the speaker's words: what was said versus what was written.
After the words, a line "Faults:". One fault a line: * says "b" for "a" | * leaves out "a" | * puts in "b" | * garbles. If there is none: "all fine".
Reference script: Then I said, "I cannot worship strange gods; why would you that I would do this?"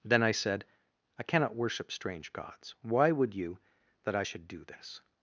Then I said, "I cannot worship strange gods; why would you that I should do this?"
Faults:
* says "should" for "would"